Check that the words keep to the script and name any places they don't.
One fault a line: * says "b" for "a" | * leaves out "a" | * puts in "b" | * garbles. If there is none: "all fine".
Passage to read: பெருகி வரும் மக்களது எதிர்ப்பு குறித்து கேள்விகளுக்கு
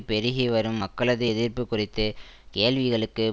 all fine